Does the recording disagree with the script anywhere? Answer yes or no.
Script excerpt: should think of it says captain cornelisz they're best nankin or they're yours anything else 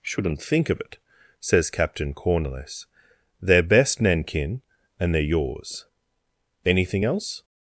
yes